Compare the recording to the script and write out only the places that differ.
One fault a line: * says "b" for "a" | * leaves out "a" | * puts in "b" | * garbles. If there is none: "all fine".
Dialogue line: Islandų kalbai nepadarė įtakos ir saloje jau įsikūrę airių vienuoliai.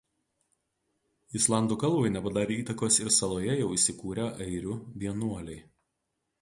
all fine